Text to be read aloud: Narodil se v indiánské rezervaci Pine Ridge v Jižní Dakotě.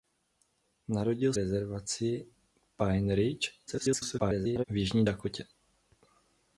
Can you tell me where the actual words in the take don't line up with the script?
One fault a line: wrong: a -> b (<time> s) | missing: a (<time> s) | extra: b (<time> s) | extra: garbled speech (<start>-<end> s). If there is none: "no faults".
missing: se v indiánské (1.3 s)
extra: garbled speech (3.7-4.6 s)